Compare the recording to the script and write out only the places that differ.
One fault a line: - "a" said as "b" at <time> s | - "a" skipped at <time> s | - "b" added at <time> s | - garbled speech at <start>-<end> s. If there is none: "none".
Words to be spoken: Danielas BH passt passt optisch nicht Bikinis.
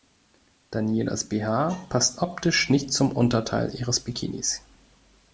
- "passt" skipped at 2.2 s
- "zum Unterteil ihres" added at 2.9 s